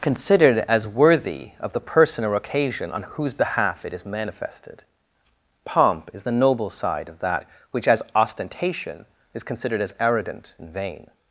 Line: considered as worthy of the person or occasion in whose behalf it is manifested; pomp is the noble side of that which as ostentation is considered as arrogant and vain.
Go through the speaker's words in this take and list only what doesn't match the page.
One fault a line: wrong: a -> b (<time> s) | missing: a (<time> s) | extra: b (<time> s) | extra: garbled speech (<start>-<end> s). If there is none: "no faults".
wrong: in -> on (2.9 s)